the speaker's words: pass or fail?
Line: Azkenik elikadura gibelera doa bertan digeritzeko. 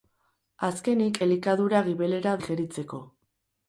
fail